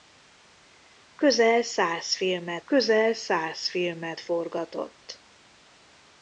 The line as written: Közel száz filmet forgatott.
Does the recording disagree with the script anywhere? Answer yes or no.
yes